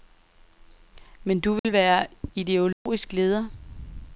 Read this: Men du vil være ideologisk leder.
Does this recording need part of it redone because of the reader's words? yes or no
no